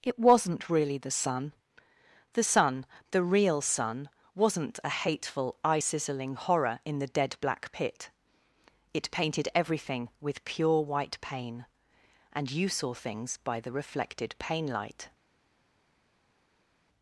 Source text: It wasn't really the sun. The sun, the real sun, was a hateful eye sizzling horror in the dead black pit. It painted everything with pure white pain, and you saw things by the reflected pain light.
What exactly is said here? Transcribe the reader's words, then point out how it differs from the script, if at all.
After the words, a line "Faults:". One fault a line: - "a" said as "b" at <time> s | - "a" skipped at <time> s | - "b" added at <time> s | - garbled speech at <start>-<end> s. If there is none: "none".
It wasn't really the sun. The sun, the real sun, wasn't a hateful eye sizzling horror in the dead black pit. It painted everything with pure white pain, and you saw things by the reflected pain light.
Faults:
- "was" said as "wasn't" at 4.3 s